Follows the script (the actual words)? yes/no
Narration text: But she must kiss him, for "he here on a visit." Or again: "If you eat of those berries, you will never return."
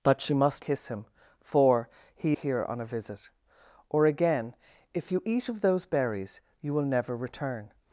yes